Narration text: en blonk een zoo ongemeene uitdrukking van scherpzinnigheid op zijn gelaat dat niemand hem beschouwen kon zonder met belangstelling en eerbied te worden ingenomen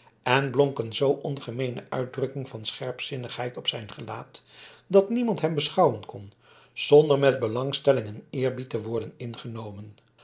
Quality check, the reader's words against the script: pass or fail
pass